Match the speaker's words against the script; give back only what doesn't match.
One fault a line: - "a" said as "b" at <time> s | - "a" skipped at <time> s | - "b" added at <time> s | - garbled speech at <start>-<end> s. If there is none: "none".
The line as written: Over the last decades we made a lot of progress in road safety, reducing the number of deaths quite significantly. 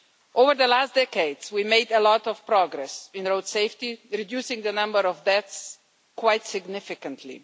none